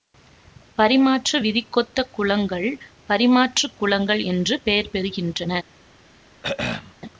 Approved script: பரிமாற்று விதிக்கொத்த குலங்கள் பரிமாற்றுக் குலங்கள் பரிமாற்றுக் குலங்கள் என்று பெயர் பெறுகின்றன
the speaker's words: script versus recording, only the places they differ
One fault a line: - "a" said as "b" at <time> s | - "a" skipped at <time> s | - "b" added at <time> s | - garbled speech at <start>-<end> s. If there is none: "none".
- "பரிமாற்றுக் குலங்கள்" skipped at 4.2 s